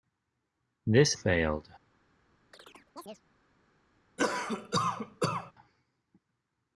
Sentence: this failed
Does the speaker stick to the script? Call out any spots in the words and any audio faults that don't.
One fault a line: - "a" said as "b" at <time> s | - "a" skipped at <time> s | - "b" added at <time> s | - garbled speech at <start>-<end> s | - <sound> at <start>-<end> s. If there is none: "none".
- chirp at 2.5-3.2 s
- cough at 4.2-5.5 s